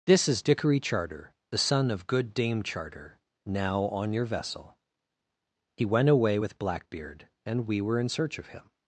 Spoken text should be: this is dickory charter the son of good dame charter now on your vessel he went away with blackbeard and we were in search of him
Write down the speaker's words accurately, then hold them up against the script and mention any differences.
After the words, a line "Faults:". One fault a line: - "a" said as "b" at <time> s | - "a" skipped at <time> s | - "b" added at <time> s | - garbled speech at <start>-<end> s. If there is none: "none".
this is dickory charter the son of good dame charter now on your vessel he went away with blackbeard and we were in search of him
Faults:
none